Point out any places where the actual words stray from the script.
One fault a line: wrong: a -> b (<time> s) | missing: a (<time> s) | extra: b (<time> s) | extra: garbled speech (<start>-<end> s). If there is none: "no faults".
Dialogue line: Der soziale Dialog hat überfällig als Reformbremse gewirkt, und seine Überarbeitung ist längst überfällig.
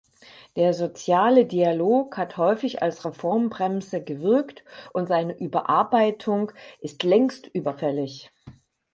wrong: überfällig -> häufig (2.4 s)